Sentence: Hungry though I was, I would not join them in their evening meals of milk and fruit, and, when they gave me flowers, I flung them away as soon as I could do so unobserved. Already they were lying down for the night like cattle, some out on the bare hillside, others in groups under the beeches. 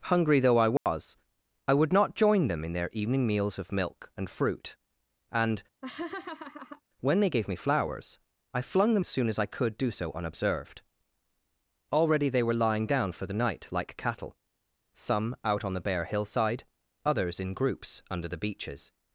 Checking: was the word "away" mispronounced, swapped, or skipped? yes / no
yes